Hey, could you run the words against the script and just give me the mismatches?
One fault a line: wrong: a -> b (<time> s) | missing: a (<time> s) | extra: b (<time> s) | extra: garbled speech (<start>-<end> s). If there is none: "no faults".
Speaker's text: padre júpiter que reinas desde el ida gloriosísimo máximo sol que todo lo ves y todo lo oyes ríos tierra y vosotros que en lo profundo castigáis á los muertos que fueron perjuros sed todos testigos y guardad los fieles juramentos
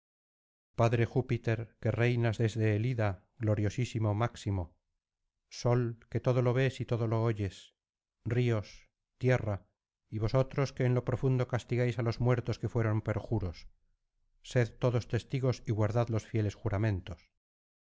no faults